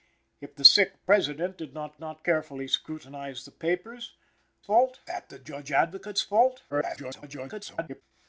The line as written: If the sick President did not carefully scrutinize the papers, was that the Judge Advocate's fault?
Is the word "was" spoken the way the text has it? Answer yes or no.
no